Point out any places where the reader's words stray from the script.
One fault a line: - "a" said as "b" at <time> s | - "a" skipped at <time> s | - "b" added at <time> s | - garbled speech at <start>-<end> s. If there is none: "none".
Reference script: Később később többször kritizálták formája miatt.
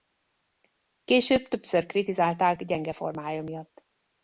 - "később" skipped at 1.5 s
- "gyenge" added at 2.6 s